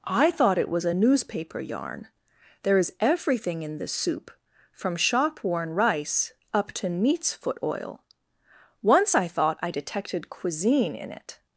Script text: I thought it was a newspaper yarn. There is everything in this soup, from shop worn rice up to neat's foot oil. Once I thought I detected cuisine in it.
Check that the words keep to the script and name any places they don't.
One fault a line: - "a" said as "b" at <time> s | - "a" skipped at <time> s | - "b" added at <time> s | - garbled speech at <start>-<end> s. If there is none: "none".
none